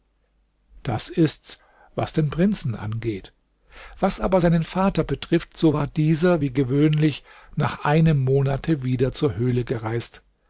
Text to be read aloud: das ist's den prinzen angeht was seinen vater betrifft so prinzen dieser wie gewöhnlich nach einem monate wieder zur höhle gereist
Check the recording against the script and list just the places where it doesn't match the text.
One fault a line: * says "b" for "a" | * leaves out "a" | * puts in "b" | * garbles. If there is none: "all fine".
* puts in "was"
* puts in "aber"
* says "war" for "prinzen"